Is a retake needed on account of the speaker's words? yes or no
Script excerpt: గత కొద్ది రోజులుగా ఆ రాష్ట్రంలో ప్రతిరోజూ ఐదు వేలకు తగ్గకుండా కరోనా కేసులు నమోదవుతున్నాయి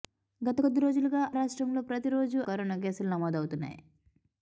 yes